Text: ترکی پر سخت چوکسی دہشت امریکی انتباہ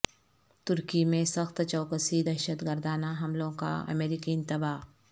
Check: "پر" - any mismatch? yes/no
yes